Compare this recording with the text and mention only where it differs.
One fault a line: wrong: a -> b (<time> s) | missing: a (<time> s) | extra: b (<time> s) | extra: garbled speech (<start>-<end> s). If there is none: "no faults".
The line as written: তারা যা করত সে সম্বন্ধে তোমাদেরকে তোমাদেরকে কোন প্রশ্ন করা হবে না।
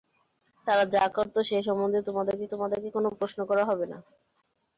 no faults